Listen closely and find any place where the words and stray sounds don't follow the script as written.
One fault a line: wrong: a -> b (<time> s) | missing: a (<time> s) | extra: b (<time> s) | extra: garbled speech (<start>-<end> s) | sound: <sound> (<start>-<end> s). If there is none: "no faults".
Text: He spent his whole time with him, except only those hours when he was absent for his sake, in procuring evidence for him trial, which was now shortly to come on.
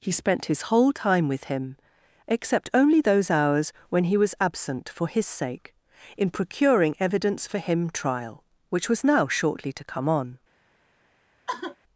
sound: sigh (11.5-11.8 s)